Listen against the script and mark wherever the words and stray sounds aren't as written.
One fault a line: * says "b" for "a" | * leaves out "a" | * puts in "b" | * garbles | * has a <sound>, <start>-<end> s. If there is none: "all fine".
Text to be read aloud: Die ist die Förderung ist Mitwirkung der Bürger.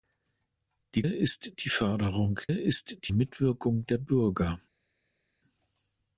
all fine